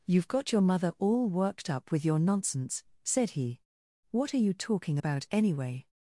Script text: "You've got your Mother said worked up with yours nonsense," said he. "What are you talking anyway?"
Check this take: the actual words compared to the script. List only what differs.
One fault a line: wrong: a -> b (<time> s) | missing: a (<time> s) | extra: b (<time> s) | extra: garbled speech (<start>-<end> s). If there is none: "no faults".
wrong: said -> all (1.0 s)
wrong: yours -> your (2.0 s)
extra: about (4.9 s)